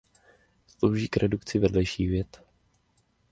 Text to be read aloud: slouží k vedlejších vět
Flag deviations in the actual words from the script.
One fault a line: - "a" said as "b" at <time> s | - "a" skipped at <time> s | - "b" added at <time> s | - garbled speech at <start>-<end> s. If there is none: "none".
- "redukci" added at 1.2 s